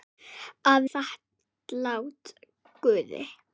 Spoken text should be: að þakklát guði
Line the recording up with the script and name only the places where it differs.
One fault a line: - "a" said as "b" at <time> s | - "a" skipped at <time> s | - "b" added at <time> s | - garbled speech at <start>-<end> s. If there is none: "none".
none